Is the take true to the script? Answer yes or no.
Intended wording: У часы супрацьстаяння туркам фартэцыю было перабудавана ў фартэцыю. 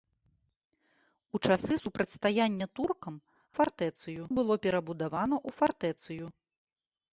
yes